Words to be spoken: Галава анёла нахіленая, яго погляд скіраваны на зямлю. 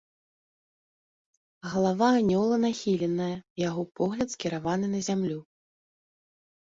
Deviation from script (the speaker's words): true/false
false